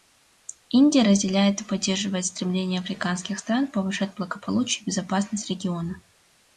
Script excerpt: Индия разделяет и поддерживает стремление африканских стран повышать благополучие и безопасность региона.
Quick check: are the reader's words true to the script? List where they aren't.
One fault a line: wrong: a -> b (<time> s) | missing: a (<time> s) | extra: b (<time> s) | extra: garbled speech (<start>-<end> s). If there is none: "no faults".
no faults